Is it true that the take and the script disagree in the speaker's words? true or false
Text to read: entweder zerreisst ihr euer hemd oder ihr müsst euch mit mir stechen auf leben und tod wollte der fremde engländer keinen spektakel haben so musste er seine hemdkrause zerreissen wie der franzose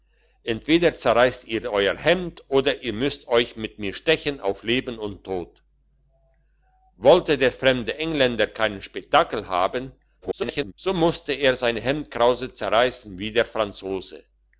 true